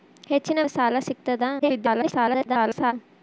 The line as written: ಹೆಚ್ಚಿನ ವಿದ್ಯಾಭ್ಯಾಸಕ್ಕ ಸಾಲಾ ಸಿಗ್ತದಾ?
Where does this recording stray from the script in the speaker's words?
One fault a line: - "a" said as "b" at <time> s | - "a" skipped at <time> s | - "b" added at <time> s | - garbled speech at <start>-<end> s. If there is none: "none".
- "ವಿದ್ಯಾಭ್ಯಾಸಕ್ಕ" skipped at 0.6 s
- garbled speech at 1.6-2.9 s